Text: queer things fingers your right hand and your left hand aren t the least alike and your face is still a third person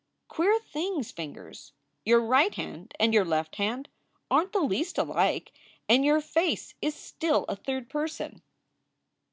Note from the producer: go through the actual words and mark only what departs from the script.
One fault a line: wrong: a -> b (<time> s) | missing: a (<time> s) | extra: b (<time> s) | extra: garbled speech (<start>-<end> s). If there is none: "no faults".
no faults